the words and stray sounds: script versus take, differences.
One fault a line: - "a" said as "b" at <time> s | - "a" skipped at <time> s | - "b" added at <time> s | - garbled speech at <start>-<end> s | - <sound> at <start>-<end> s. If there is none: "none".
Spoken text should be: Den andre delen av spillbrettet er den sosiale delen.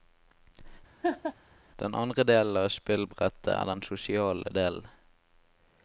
- laugh at 1.0-1.3 s